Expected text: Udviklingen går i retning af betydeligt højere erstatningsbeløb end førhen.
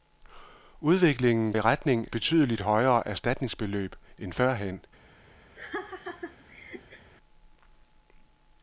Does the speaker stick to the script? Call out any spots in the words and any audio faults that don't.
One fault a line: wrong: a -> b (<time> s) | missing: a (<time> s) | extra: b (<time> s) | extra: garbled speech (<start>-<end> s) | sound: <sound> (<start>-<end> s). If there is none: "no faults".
missing: går (1.5 s)
missing: af (2.1 s)
sound: laugh (5.6-7.1 s)